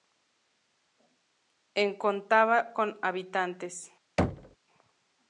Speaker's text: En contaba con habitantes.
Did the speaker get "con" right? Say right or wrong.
right